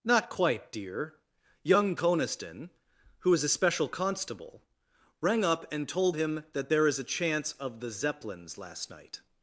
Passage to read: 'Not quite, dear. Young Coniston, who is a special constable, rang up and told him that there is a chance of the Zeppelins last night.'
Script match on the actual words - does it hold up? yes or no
yes